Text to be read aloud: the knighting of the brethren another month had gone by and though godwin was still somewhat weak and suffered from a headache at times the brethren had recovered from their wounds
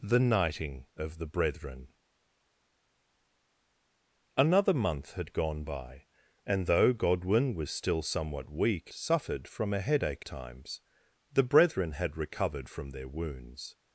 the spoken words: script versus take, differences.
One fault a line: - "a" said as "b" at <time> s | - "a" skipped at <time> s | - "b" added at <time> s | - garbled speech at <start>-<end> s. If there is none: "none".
- "and" skipped at 8.9 s
- "at" skipped at 10.2 s